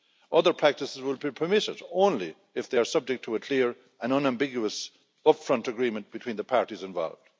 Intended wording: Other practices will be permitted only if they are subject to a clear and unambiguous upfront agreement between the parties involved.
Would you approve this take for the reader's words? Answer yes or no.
yes